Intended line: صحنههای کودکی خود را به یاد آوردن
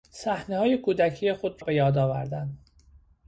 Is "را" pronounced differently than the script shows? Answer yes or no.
yes